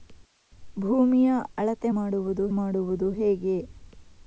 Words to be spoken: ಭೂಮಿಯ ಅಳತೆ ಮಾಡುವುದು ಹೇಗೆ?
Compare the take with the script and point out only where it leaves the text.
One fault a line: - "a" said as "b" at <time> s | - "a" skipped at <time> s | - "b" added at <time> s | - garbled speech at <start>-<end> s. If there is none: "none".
- "ಮಾಡುವುದು" added at 2.5 s